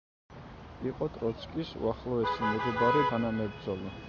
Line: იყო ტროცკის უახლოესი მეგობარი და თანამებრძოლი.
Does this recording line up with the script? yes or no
no